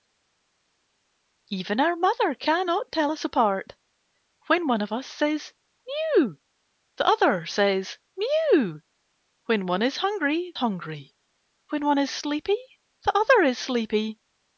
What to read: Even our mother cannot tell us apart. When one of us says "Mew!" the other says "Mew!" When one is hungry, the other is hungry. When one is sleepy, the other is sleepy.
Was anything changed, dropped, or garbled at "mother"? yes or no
no